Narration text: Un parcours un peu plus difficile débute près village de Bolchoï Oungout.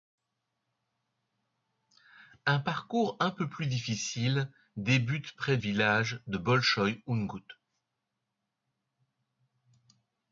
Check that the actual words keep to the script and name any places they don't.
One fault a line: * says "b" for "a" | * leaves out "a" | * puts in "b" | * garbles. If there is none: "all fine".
all fine